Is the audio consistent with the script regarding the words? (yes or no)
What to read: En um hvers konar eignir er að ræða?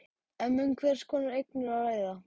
yes